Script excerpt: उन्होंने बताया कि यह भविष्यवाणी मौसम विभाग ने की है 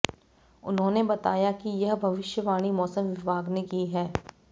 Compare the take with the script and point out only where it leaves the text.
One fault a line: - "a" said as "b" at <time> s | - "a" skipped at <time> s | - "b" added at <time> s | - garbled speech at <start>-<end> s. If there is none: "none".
none